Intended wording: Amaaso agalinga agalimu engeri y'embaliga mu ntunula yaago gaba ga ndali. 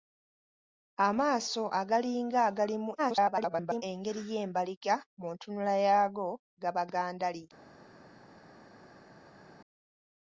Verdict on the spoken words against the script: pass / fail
fail